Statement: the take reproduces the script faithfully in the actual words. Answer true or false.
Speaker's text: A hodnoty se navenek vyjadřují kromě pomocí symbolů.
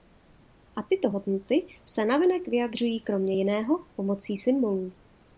false